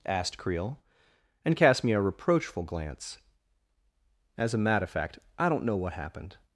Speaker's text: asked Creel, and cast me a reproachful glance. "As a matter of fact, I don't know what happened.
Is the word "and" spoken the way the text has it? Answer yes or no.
yes